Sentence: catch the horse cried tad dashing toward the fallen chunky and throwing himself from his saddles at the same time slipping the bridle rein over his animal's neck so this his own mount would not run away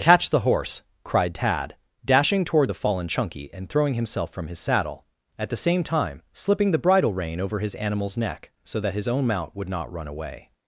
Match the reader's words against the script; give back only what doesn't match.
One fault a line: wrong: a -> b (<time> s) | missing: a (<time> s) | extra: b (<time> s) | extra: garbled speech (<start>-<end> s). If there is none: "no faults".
wrong: saddles -> saddle (4.6 s)
wrong: this -> that (8.8 s)